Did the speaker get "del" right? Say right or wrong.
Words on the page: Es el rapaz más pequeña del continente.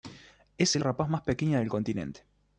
right